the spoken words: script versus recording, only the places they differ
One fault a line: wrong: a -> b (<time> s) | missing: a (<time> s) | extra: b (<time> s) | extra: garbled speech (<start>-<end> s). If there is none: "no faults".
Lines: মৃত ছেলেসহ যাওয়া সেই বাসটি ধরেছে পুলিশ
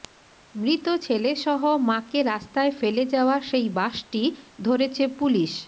extra: মাকে রাস্তায় ফেলে (1.9 s)